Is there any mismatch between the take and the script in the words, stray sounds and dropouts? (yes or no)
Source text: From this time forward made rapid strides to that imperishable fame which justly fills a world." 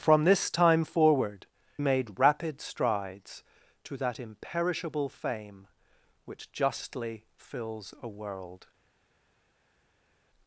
no